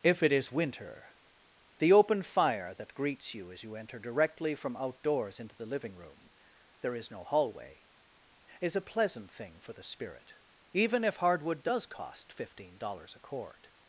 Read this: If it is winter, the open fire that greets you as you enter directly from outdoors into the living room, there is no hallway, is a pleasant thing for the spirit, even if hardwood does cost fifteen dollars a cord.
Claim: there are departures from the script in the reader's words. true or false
false